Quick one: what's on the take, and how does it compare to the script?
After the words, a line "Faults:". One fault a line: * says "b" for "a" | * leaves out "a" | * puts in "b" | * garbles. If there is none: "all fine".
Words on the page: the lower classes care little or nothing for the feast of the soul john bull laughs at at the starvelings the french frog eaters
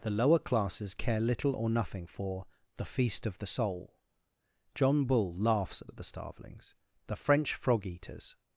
the lower classes care little or nothing for the feast of the soul john bull laughs at at the starvelings the french frog eaters
Faults:
all fine